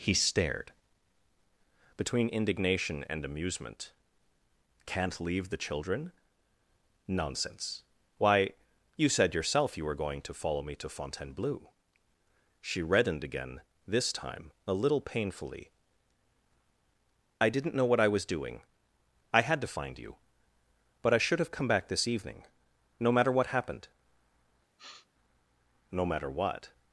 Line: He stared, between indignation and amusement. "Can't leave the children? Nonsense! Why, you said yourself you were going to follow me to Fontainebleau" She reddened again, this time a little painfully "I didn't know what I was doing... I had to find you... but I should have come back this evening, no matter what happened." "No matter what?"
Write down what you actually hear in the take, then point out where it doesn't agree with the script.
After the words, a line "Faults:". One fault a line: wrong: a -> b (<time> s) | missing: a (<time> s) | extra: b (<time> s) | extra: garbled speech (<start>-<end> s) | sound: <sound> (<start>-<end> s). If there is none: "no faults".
He stared, between indignation and amusement. "Can't leave the children? Nonsense! Why, you said yourself you were going to follow me to Fontainebleau" She reddened again, this time a little painfully "I didn't know what I was doing... I had to find you... but I should have come back this evening, no matter what happened." "No matter what?"
Faults:
sound: sniff (24.8-25.1 s)